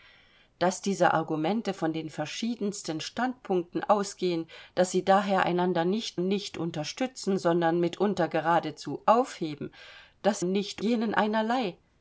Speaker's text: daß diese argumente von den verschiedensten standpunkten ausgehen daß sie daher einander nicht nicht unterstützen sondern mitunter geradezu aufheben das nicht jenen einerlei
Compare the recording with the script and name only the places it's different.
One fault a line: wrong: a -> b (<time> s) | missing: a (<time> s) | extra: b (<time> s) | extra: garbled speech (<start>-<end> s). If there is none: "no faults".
no faults